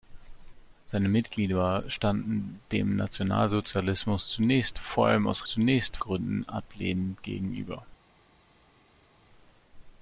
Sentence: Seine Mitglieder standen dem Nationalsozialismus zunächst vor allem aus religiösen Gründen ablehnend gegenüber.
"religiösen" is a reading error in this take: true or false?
true